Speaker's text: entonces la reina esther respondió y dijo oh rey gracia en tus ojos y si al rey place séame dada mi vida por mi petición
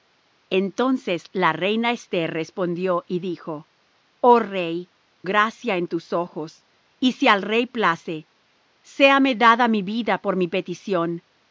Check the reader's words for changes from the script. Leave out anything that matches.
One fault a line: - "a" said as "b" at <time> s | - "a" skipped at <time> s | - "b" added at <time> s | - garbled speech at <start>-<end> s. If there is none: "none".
none